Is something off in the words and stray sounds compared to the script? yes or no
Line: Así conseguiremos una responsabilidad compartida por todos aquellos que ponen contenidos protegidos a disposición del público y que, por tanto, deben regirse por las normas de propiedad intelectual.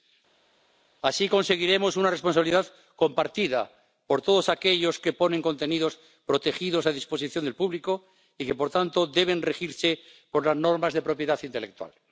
no